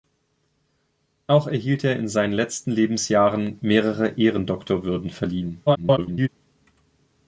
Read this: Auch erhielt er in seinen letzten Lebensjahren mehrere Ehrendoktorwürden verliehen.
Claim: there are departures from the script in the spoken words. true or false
true